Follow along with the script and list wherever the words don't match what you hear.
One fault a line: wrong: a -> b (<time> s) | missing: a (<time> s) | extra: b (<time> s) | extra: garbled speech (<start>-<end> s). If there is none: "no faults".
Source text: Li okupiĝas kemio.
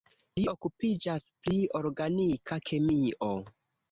extra: pri organika (1.5 s)